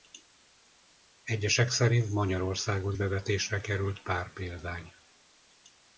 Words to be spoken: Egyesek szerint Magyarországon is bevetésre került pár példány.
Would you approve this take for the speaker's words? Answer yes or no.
no